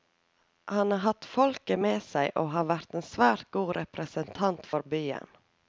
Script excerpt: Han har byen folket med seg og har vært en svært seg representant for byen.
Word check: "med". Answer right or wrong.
right